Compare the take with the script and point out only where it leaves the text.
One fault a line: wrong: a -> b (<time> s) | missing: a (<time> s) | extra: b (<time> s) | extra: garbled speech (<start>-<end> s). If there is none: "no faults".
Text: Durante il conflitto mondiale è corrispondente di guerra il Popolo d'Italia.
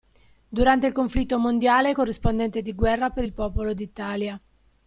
extra: per (3.1 s)